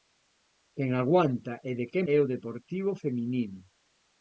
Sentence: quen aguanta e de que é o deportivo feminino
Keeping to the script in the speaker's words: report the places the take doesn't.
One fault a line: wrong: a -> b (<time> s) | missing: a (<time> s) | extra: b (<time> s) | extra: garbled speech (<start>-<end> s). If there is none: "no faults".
no faults